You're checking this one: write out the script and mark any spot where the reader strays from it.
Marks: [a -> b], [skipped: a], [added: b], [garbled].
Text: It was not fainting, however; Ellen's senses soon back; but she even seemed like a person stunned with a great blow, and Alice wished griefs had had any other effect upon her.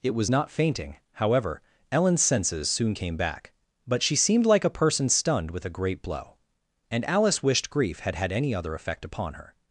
It was not fainting, however; Ellen's senses soon [added: came] back; but she [skipped: even] seemed like a person stunned with a great blow, and Alice wished [griefs -> grief] had had any other effect upon her.